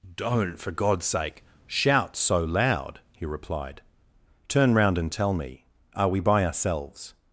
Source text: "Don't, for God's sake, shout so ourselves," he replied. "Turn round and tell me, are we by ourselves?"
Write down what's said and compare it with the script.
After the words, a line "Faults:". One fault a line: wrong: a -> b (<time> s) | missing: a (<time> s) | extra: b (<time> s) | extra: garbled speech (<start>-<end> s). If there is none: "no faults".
"Don't, for God's sake, shout so loud," he replied. "Turn round and tell me, are we by ourselves?"
Faults:
wrong: ourselves -> loud (2.4 s)